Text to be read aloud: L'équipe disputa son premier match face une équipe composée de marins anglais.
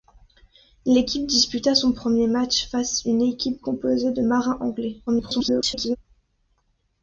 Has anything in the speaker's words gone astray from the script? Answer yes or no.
yes